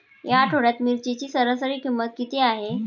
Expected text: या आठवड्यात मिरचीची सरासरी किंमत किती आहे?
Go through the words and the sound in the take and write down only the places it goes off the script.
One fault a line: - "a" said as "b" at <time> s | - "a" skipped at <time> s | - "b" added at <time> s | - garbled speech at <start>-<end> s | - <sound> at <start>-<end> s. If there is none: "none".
none